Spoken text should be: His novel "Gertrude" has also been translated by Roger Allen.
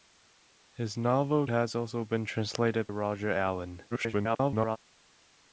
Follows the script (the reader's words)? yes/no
no